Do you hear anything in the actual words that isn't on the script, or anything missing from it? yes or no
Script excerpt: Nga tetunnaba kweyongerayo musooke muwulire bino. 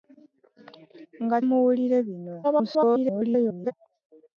yes